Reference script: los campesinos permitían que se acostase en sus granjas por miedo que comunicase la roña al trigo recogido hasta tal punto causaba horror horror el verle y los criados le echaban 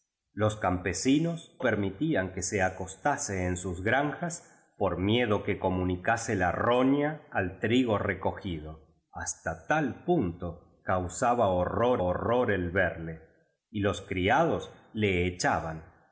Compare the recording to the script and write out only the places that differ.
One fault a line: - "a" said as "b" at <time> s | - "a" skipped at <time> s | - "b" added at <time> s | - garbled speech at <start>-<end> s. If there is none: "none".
none